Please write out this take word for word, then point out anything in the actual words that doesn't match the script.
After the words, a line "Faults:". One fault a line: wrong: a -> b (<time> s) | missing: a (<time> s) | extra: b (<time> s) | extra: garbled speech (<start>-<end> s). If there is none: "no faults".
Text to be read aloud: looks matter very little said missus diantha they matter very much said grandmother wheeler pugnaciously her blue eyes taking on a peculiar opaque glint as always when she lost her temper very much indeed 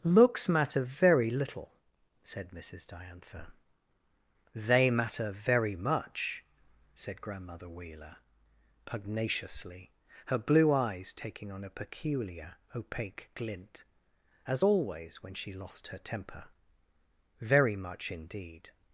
looks matter very little said missus diantha they matter very much said grandmother wheeler pugnaciously her blue eyes taking on a peculiar opaque glint as always when she lost her temper very much indeed
Faults:
no faults